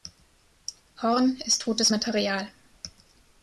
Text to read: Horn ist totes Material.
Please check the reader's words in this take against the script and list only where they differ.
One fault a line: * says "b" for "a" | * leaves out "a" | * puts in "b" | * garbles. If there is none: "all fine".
all fine